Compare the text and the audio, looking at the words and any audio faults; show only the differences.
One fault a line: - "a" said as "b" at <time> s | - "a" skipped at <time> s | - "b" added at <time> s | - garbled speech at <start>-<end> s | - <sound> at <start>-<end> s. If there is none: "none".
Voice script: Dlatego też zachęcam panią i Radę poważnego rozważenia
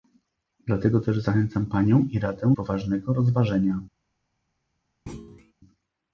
- thud at 5.1-5.5 s